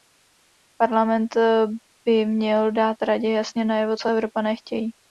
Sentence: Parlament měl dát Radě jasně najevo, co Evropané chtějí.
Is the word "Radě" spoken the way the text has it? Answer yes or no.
yes